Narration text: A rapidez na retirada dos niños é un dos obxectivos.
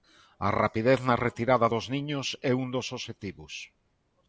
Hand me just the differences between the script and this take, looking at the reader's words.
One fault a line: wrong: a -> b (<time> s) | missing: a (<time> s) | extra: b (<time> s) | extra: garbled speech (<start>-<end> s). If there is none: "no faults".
no faults